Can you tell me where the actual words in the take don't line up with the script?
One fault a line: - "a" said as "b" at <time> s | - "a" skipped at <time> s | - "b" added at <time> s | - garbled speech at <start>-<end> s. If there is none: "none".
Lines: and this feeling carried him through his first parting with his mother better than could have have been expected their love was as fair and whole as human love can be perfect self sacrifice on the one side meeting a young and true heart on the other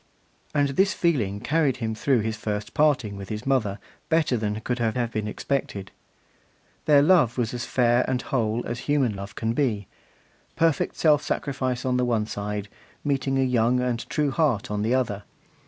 none